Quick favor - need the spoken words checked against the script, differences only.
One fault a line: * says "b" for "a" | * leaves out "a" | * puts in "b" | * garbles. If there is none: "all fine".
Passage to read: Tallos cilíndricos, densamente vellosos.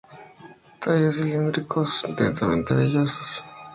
all fine